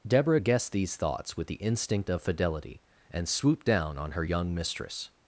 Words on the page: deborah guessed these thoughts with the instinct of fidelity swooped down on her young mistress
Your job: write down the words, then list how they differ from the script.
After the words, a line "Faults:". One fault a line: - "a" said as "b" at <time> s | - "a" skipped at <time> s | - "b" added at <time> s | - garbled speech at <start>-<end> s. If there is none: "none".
deborah guessed these thoughts with the instinct of fidelity and swooped down on her young mistress
Faults:
- "and" added at 3.1 s